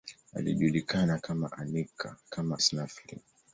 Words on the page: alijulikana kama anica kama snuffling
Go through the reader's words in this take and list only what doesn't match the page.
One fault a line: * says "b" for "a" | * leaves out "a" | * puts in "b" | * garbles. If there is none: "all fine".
all fine